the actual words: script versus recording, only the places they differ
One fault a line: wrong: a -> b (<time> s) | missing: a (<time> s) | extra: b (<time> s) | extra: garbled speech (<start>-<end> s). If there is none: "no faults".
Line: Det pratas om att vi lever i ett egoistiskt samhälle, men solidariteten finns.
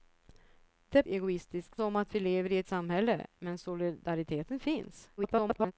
wrong: pratas -> egoistiskt (1.1 s)
missing: egoistiskt (2.7 s)
extra: garbled speech (5.2-5.7 s)